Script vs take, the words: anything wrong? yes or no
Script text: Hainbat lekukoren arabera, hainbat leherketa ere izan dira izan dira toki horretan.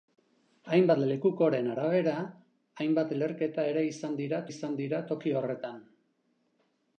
no